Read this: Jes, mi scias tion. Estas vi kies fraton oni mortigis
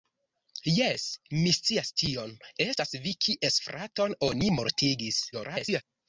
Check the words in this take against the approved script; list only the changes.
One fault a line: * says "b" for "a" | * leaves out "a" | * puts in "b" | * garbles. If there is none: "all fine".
* garbles